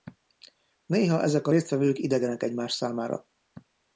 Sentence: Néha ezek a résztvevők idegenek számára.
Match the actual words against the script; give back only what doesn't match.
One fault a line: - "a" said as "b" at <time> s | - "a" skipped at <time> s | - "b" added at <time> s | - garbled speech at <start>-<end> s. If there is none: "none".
- "egymás" added at 2.4 s